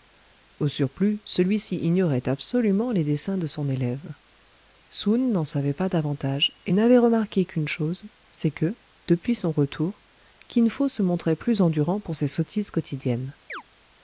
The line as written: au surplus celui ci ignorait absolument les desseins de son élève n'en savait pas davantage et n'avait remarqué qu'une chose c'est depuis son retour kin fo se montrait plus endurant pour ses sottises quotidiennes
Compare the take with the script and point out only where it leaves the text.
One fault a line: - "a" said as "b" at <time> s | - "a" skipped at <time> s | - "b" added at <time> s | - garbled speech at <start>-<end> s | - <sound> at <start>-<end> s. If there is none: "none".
- "soun" added at 4.9 s
- "que" added at 8.5 s
- chirp at 13.5-13.6 s